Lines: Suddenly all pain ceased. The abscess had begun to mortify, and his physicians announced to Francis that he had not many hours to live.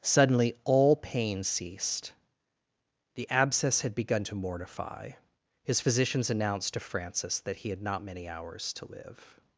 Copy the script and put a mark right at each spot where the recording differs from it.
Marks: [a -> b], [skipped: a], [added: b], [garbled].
Suddenly all pain ceased. The abscess had begun to mortify, [skipped: and] his physicians announced to Francis that he had not many hours to live.